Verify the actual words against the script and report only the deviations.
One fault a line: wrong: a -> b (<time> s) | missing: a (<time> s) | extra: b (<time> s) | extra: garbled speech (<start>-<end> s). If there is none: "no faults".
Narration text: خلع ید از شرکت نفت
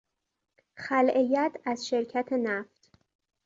no faults